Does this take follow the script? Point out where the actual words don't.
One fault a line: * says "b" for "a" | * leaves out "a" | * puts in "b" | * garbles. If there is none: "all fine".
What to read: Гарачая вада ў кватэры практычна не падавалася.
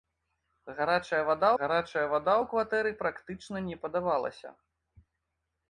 * puts in "гарачая вада"